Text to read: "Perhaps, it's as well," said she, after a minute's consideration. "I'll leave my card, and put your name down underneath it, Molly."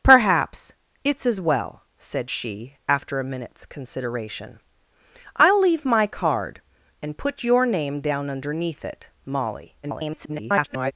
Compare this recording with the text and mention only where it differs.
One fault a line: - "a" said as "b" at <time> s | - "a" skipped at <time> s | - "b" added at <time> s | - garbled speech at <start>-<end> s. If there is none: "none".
- garbled speech at 9.8-10.9 s